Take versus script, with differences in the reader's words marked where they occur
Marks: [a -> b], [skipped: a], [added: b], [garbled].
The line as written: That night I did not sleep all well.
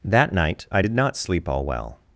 That night I did not sleep all well.